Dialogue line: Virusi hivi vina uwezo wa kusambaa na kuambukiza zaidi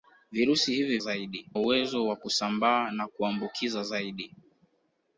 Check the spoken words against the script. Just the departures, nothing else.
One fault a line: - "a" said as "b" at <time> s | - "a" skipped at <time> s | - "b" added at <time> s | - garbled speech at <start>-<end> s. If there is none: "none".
- "vina" said as "zaidi" at 1.0 s